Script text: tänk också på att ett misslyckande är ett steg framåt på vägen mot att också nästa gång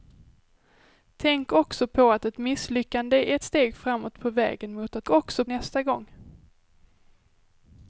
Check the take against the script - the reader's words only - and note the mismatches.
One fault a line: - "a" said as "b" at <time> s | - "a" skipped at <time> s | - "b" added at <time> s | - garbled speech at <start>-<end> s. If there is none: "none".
none